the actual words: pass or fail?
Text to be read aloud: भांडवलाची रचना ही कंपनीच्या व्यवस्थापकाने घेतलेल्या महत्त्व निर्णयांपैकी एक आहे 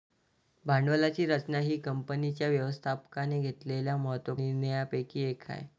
pass